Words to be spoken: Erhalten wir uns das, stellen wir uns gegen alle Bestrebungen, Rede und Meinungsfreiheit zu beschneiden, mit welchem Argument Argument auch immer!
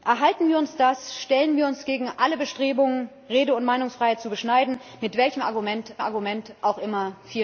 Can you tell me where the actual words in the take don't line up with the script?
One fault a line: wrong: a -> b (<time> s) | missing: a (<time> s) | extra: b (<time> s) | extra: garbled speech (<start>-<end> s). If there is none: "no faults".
no faults